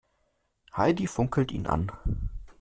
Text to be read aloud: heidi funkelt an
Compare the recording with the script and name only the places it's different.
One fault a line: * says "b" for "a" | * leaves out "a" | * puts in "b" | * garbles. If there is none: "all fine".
* puts in "ihn"